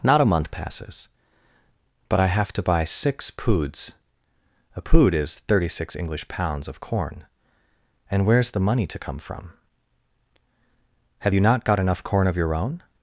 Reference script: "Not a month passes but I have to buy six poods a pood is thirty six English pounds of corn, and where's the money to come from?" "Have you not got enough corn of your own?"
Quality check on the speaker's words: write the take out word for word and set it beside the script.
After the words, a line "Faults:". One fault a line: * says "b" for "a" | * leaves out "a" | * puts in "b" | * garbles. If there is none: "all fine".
"Not a month passes but I have to buy six poods a pood is thirty six English pounds of corn, and where's the money to come from?" "Have you not got enough corn of your own?"
Faults:
all fine